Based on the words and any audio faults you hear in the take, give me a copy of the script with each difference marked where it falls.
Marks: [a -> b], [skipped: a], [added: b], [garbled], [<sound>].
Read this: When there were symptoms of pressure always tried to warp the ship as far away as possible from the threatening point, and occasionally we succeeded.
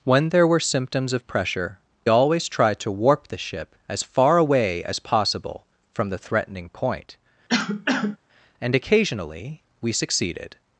When there were symptoms of pressure always tried to warp the ship as far away as possible from the threatening point, [cough] and occasionally we succeeded.